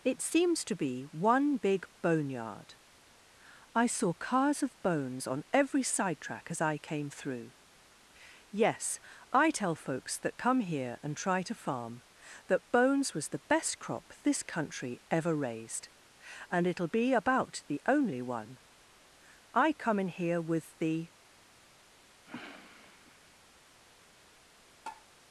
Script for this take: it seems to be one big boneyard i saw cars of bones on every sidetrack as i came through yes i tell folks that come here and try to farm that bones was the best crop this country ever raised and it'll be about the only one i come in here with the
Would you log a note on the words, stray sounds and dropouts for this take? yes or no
yes